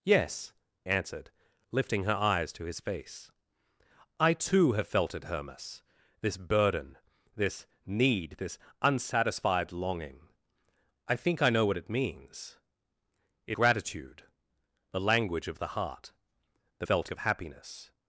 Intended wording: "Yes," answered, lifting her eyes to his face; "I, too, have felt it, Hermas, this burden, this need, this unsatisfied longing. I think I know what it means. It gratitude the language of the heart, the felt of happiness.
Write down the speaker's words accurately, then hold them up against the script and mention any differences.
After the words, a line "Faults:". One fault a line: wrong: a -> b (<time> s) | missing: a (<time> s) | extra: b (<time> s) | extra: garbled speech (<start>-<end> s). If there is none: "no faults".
"Yes," answered, lifting her eyes to his face; "I, too, have felt it, Hermas, this burden, this need, this unsatisfied longing. I think I know what it means. It gratitude the language of the heart, the felt of happiness.
Faults:
no faults